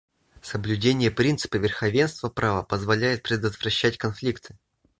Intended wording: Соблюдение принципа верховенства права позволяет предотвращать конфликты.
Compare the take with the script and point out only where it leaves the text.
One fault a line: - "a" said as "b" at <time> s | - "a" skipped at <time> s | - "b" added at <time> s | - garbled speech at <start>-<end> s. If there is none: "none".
none